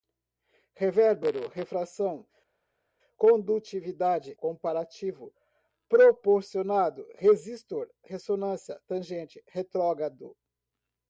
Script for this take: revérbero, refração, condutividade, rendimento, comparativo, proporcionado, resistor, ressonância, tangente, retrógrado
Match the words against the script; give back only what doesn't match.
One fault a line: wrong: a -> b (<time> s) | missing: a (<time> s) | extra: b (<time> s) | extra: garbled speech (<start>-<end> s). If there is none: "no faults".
missing: rendimento (4.3 s)